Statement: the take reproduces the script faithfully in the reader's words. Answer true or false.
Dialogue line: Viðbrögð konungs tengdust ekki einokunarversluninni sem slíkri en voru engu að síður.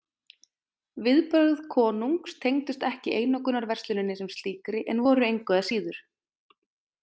true